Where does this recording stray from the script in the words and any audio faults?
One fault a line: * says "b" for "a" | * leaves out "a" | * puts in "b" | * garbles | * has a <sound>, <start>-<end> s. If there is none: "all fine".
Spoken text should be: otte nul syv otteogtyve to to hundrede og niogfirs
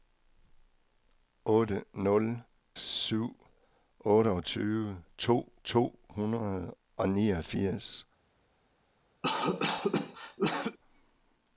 * has a cough, 9.2-10.8 s